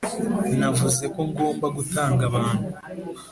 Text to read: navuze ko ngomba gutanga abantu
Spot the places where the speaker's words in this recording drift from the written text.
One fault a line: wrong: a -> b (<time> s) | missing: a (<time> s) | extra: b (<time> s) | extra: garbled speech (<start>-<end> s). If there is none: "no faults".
no faults